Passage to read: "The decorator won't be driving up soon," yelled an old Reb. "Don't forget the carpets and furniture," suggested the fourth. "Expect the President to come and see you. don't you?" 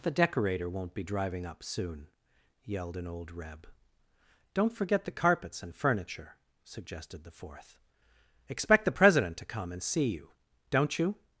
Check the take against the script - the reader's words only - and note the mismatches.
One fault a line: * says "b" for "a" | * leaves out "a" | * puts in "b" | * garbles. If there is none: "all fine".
all fine